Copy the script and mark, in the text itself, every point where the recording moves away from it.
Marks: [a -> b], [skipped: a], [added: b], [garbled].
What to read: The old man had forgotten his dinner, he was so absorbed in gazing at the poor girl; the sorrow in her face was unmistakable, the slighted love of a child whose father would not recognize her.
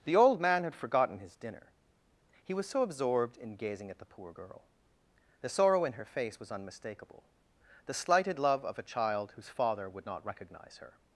The old man had forgotten his dinner, he was so absorbed in gazing at the poor girl; the sorrow in her face was unmistakable, the slighted love of a child whose father would not recognize her.